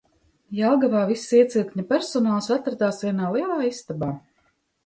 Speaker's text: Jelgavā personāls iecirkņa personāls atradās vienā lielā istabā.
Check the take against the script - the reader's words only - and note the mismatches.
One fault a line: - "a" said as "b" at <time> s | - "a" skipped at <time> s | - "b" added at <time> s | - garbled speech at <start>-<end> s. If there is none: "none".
- "personāls" said as "viss" at 1.1 s